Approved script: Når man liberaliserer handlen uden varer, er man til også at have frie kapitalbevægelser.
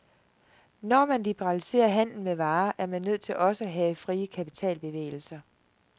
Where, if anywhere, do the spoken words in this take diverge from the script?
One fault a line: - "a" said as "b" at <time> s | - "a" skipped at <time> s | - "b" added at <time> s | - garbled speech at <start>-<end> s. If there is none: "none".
- "uden" said as "med" at 2.2 s
- "nødt" added at 3.0 s